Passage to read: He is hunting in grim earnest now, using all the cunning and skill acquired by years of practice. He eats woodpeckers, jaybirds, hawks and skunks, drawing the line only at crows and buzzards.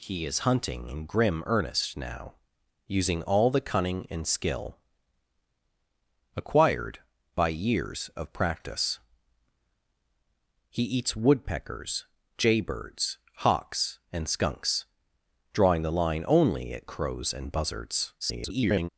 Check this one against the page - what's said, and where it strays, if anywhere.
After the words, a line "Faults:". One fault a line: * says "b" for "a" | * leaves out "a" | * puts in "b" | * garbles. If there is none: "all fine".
He is hunting in grim earnest now, using all the cunning and skill acquired by years of practice. He eats woodpeckers, jaybirds, hawks and skunks, drawing the line only at crows and buzzards. [garbled]
Faults:
* garbles